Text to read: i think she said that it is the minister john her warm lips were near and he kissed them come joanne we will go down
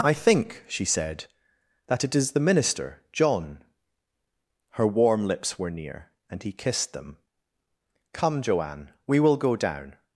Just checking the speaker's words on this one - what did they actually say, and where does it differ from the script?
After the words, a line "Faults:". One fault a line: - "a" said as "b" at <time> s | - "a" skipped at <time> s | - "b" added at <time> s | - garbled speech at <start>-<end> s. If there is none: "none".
i think she said that it is the minister john her warm lips were near and he kissed them come joanne we will go down
Faults:
none